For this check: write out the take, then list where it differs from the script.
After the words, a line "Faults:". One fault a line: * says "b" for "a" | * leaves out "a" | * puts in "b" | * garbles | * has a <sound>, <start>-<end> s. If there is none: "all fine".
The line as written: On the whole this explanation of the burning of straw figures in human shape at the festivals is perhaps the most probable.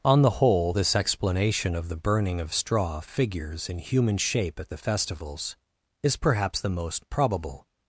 On the whole this explanation of the burning of straw figures in human shape at the festivals is perhaps the most probable.
Faults:
all fine